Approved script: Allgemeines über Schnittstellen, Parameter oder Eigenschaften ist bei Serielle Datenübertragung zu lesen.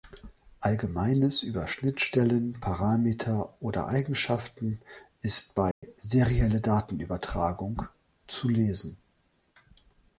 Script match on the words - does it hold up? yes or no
yes